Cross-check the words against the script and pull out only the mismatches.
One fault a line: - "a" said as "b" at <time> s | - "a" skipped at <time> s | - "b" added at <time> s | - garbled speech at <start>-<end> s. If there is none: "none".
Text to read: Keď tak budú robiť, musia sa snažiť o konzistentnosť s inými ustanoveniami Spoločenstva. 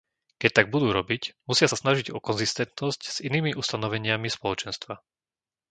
none